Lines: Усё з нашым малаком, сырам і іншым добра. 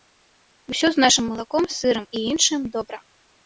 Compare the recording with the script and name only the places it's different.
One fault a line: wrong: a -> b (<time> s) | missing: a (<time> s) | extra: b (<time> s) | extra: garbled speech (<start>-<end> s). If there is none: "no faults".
no faults